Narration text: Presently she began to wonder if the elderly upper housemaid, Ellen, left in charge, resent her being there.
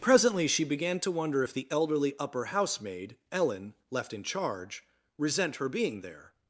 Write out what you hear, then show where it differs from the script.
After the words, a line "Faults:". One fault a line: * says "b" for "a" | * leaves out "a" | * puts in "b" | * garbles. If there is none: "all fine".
Presently she began to wonder if the elderly upper housemaid, Ellen, left in charge, resent her being there.
Faults:
all fine